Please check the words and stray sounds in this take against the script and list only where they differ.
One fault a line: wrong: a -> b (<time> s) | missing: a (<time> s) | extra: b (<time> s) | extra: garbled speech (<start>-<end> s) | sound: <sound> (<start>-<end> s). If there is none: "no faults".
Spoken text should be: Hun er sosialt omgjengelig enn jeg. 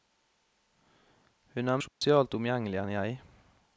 sound: dropout (1.9-2.0 s)